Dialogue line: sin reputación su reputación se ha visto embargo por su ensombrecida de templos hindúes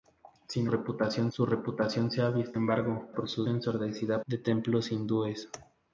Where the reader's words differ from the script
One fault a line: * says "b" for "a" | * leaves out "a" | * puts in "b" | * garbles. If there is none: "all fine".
all fine